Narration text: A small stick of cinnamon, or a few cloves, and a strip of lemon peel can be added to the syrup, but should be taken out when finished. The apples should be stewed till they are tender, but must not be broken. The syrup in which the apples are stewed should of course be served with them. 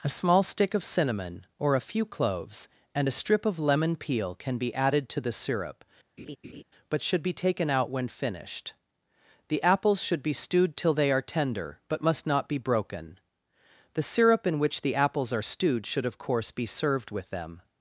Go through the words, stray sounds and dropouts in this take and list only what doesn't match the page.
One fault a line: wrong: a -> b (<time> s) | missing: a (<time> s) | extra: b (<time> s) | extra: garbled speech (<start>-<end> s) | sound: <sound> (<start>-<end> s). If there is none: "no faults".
sound: laugh (6.2-6.6 s)